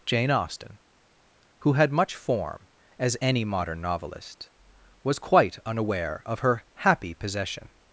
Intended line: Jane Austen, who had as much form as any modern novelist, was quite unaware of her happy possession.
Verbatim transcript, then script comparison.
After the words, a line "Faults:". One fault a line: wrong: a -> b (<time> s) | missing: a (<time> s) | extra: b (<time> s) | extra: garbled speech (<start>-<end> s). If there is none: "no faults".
Jane Austen, who had much form as any modern novelist, was quite unaware of her happy possession.
Faults:
missing: as (1.9 s)